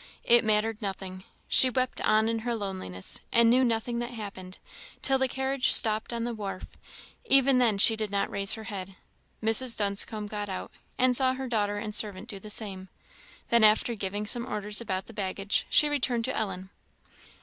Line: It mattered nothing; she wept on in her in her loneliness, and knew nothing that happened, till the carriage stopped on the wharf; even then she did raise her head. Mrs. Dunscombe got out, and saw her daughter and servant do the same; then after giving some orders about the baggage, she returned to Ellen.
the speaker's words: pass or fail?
fail